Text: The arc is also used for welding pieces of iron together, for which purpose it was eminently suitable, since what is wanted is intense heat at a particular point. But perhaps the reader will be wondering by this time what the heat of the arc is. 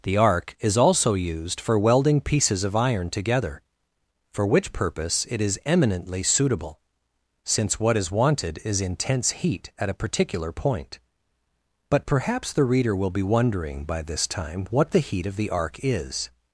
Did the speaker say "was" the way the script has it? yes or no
no